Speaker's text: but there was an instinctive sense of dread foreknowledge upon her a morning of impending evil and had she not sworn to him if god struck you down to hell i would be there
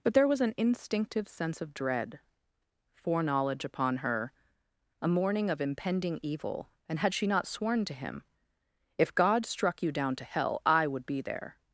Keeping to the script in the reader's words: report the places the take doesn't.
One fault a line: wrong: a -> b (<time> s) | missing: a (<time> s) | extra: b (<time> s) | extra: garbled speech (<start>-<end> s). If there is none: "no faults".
no faults